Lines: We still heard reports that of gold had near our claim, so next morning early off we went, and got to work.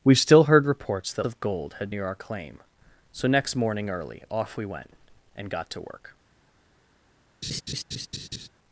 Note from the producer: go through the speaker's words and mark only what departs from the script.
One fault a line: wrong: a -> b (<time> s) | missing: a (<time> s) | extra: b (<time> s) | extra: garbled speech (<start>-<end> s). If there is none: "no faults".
no faults